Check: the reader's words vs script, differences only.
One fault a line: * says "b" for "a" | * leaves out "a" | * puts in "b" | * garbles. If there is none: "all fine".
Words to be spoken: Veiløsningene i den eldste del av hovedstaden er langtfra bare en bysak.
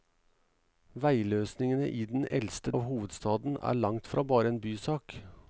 * leaves out "del"